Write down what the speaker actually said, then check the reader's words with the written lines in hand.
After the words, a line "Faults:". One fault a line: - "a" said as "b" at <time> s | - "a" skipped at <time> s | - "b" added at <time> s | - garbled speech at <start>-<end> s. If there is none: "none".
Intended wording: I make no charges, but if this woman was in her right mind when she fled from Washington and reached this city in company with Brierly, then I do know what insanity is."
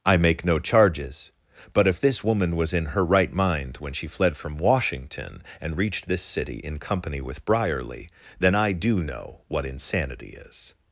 I make no charges, but if this woman was in her right mind when she fled from Washington and reached this city in company with Brierly, then I do know what insanity is."
Faults:
none